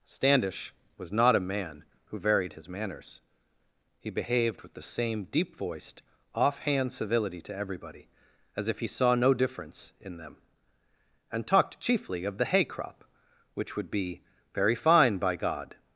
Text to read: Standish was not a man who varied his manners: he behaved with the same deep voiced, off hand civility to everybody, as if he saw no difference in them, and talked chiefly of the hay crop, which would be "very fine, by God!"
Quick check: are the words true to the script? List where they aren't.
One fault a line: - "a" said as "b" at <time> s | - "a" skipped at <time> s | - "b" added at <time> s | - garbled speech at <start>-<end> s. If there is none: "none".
none